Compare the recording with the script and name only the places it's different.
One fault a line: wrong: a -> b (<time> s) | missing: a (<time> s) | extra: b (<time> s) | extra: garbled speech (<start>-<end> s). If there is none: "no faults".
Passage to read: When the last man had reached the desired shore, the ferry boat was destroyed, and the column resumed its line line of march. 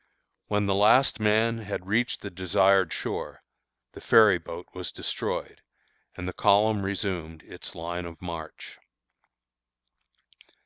missing: line (8.1 s)